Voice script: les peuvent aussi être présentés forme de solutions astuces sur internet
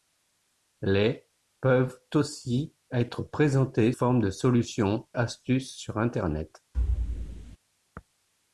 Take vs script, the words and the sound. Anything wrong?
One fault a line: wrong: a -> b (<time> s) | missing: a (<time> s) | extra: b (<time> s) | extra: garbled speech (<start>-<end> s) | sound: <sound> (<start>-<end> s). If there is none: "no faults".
sound: thud (6.7-7.6 s)